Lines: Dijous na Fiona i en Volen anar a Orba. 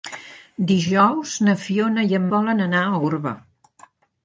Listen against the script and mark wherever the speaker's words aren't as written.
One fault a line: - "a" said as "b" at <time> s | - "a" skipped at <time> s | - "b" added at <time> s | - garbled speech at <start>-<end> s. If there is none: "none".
none